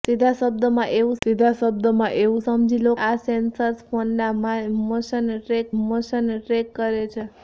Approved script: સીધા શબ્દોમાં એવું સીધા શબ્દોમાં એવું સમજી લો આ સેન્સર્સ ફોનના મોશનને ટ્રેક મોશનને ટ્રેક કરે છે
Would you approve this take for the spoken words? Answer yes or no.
yes